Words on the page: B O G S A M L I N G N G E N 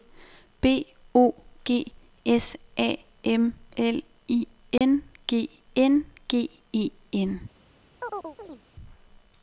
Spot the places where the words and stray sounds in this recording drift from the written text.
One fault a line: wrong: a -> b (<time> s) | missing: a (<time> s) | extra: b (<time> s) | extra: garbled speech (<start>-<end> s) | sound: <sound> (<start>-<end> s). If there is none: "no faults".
sound: dropout (4.8-4.8 s)
sound: chirp (8.0-8.6 s)